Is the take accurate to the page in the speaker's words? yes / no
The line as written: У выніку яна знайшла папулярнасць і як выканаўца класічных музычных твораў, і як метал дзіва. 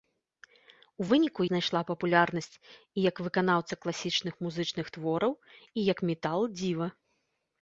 no